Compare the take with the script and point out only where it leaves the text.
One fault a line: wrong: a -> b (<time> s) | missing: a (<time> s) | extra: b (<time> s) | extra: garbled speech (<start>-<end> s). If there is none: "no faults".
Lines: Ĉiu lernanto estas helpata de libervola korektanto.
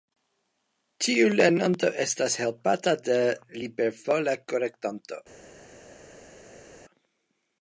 no faults